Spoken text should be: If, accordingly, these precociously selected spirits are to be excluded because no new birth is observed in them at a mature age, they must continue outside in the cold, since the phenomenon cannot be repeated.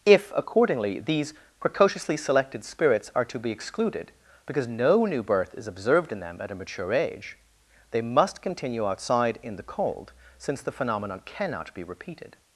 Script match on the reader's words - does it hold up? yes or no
yes